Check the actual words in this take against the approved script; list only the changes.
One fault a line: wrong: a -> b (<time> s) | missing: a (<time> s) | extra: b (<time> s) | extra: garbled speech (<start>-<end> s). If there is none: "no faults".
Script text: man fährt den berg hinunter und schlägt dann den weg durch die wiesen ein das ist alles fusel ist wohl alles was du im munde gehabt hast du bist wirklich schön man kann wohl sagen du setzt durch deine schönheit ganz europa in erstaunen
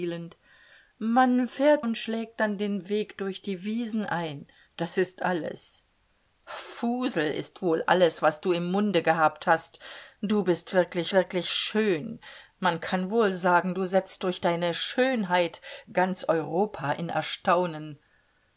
missing: den berg hinunter (1.9 s)
extra: wirklich (11.1 s)